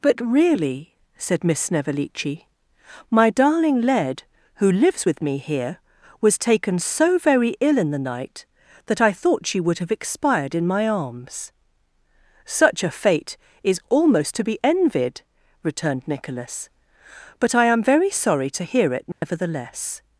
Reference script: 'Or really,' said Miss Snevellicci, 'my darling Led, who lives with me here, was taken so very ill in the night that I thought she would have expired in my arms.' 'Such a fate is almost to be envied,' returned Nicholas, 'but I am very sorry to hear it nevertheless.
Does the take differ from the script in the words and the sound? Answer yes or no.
yes